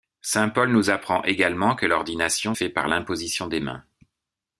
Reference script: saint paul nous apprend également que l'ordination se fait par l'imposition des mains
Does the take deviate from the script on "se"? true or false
true